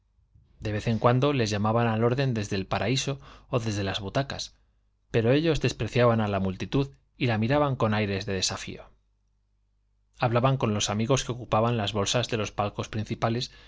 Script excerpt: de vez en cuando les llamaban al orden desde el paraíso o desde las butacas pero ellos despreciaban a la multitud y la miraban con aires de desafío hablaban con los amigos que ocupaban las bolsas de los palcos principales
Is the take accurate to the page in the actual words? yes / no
yes